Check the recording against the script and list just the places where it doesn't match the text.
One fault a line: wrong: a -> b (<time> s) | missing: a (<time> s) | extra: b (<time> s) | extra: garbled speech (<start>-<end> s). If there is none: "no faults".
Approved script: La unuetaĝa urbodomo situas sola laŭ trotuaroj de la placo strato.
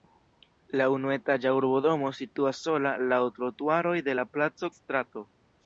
no faults